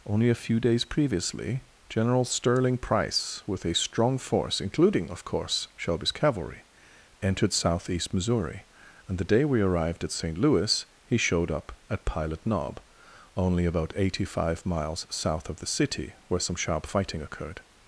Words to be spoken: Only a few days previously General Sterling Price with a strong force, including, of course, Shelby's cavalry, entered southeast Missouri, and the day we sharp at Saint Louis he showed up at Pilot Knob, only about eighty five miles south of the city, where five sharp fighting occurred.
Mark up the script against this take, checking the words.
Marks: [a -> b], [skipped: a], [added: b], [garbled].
Only a few days previously General Sterling Price with a strong force, including, of course, Shelby's cavalry, entered southeast Missouri, and the day we [sharp -> arrived] at Saint Louis he showed up at Pilot Knob, only about eighty five miles south of the city, where [five -> some] sharp fighting occurred.